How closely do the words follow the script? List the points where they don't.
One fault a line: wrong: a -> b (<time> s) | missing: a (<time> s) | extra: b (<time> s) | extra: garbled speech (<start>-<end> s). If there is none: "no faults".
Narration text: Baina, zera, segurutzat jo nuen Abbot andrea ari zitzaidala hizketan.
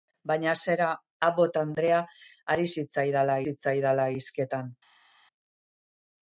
missing: segurutzat jo nuen (0.9 s)
extra: zitzaidala (3.4 s)